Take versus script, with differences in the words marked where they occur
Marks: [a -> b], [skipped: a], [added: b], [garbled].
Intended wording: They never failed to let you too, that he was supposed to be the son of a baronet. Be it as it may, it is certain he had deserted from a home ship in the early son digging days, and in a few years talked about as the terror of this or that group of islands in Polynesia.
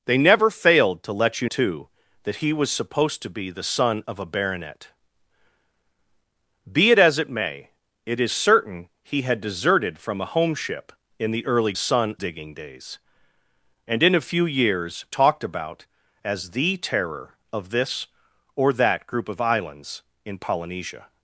They never failed to let you too, that he was supposed to be the son of a baronet. Be it as it may, it is certain he had deserted from a home ship in the early son digging days, and in a few years talked about as the terror of this or that group of islands in Polynesia.